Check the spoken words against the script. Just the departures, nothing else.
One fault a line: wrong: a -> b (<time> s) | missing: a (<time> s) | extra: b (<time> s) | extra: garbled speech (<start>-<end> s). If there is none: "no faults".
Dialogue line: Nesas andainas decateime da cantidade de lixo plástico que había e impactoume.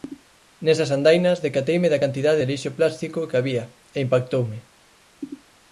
no faults